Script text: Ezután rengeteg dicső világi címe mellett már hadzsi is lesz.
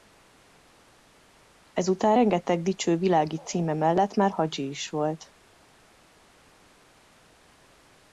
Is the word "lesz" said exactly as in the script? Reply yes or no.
no